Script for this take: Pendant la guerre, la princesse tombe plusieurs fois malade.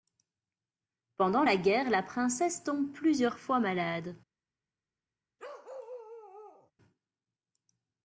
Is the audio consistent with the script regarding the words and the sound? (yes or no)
no